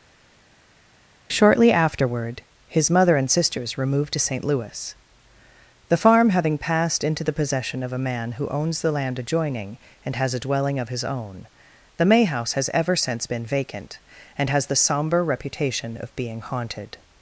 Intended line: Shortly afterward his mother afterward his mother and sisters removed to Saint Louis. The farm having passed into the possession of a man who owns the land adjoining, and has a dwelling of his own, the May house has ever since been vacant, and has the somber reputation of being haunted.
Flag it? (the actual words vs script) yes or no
yes